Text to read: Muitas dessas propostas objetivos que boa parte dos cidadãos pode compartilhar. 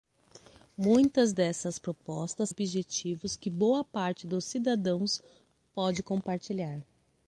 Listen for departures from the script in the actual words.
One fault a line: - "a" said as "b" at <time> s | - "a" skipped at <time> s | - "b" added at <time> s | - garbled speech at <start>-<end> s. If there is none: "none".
none